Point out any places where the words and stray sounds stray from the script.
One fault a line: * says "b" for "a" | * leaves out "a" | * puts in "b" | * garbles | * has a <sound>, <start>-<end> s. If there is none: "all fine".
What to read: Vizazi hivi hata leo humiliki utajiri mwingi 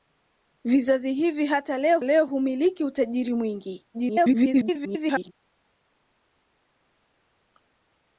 * puts in "leo"
* garbles